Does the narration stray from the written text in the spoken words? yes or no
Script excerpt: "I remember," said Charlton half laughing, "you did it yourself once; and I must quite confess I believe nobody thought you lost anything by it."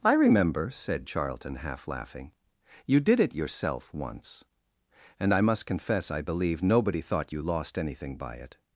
yes